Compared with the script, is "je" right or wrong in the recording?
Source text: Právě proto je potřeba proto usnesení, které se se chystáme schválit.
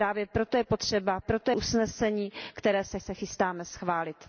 right